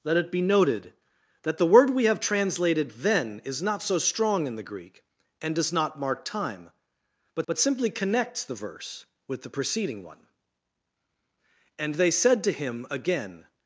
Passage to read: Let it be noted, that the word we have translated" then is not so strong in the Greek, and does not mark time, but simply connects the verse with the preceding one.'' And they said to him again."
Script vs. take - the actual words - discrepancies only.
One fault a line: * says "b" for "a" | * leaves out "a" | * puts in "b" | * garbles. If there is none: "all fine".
* puts in "but"